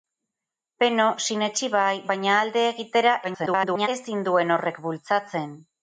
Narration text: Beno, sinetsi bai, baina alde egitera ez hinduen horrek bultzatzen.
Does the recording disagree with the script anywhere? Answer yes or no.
yes